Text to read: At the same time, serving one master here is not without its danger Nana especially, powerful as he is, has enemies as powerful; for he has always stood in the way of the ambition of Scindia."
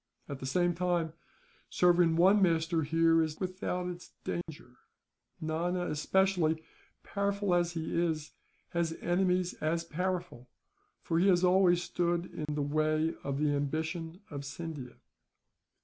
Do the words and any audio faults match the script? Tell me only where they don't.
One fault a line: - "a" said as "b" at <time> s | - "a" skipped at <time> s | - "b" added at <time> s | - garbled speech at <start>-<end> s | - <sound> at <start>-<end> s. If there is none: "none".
- "not" skipped at 3.4 s
- dropout at 4.4-4.5 s
- dropout at 12.5-12.5 s